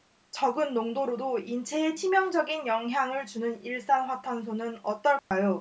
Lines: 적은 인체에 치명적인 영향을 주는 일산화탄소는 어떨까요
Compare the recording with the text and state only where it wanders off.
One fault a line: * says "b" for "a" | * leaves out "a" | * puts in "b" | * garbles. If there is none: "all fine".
* puts in "농도로도"